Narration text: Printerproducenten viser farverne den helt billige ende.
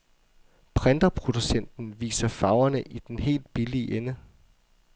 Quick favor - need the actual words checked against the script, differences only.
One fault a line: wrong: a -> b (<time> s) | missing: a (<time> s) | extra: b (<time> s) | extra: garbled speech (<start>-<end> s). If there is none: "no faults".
extra: i (2.8 s)